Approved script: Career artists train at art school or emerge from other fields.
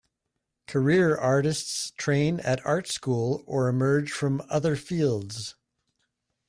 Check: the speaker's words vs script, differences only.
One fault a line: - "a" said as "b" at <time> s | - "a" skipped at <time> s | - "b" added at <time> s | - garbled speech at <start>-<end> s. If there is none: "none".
none